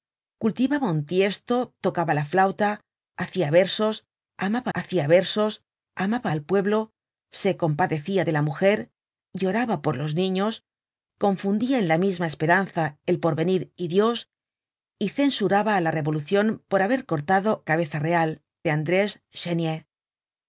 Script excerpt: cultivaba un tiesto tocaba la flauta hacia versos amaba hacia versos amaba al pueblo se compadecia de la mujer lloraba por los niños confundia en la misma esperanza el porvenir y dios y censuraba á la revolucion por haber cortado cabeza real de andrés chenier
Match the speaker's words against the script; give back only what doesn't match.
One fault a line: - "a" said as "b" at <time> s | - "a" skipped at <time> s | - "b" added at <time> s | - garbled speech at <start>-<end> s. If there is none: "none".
none